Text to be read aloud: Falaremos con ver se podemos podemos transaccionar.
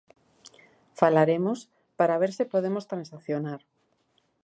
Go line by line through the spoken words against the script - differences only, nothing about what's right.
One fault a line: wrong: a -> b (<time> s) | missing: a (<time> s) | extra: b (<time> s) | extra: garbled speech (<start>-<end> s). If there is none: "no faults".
wrong: con -> para (1.9 s)
missing: podemos (2.9 s)